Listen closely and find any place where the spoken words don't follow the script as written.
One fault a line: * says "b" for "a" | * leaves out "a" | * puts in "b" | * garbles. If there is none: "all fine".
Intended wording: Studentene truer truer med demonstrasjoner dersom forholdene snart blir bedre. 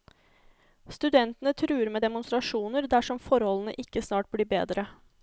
* leaves out "truer"
* puts in "ikke"